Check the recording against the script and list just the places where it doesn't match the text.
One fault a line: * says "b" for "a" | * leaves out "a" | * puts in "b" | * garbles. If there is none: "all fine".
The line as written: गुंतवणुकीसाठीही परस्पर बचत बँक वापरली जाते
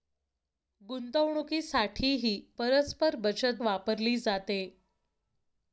* leaves out "बँक"